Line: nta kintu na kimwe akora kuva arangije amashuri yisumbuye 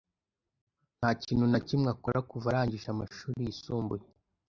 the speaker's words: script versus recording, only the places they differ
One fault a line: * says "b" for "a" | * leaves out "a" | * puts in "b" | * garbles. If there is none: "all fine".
all fine